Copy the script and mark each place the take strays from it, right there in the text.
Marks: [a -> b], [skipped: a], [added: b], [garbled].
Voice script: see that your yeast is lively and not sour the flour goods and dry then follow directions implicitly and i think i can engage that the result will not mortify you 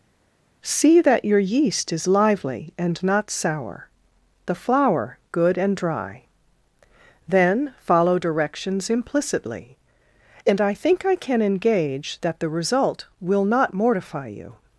see that your yeast is lively and not sour the flour [goods -> good] and dry then follow directions implicitly and i think i can engage that the result will not mortify you